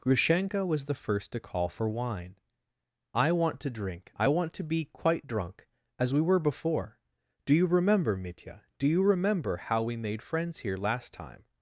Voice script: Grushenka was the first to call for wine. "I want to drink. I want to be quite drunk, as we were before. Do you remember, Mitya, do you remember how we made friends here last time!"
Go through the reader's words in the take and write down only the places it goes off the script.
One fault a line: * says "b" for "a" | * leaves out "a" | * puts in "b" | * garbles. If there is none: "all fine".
all fine